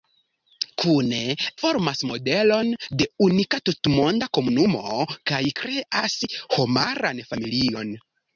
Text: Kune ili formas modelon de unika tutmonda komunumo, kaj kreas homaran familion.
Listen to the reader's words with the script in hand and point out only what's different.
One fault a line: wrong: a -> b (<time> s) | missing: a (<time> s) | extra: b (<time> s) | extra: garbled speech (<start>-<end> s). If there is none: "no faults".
missing: ili (1.2 s)